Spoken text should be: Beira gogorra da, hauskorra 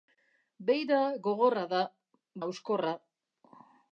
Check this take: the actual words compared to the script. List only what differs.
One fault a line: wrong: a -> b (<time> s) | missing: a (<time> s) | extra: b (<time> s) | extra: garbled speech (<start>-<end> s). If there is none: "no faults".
no faults